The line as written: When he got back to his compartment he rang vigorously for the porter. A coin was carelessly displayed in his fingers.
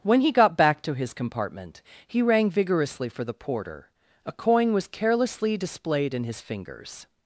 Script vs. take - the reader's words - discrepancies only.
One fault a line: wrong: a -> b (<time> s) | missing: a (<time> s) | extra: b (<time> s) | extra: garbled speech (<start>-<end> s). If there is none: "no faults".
no faults